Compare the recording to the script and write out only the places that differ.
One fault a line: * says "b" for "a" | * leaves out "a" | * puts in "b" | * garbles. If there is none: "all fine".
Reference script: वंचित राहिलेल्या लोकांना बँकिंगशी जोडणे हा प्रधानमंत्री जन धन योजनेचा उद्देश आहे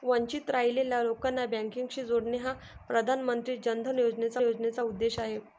* puts in "योजनेचा"